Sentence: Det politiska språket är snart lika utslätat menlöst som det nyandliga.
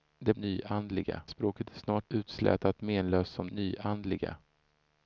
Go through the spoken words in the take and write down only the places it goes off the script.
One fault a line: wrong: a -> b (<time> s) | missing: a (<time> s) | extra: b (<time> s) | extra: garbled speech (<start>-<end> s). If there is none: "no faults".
wrong: politiska -> nyandliga (0.4 s)
missing: lika (2.1 s)
missing: det (3.5 s)